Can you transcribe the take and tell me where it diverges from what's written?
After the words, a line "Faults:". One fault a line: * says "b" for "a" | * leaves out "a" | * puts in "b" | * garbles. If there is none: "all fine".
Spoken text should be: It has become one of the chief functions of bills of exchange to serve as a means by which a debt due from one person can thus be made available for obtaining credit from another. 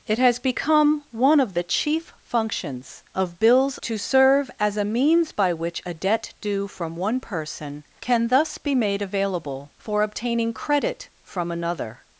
It has become one of the chief functions of bills to serve as a means by which a debt due from one person can thus be made available for obtaining credit from another.
Faults:
* leaves out "of exchange"